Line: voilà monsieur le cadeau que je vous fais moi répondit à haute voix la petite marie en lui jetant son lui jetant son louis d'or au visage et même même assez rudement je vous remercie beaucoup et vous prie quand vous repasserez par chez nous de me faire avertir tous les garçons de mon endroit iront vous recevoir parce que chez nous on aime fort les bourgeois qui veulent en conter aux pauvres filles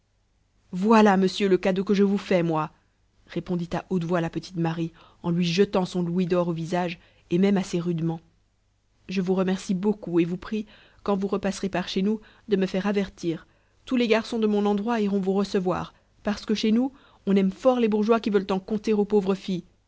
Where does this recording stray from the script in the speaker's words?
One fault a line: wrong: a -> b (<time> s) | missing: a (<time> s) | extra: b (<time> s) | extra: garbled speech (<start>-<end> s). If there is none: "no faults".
missing: lui jetant son (6.0 s)
missing: même (7.6 s)